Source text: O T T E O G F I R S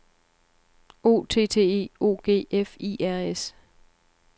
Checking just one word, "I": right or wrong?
right